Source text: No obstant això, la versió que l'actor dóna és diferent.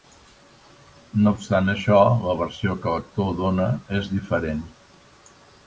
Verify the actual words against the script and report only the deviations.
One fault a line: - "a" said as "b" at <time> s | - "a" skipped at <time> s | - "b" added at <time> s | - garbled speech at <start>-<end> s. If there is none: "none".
none